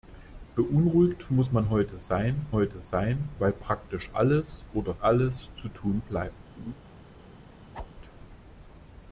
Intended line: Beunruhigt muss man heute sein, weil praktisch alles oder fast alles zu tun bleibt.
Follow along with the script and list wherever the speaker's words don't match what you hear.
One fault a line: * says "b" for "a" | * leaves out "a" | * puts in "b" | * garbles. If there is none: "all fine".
* puts in "heute sein"
* leaves out "fast"